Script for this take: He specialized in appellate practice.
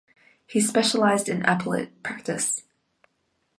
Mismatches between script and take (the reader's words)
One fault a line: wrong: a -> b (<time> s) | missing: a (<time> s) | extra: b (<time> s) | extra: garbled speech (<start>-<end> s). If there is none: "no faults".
no faults